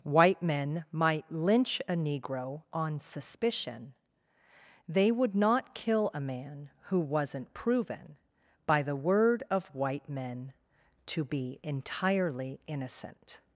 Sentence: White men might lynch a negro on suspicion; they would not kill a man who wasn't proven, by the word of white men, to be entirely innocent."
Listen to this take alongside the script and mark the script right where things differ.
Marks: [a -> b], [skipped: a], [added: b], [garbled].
White men might lynch a negro on suspicion; they would not kill a man who wasn't proven, by the word of white men, to be entirely innocent."